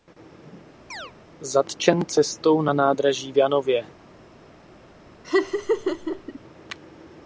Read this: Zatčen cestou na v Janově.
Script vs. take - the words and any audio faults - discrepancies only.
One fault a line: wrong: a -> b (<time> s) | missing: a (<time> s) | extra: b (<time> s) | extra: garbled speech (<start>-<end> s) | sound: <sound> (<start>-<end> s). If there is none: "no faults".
sound: chirp (0.9-1.1 s)
extra: nádraží (2.7 s)
sound: laugh (5.2-6.4 s)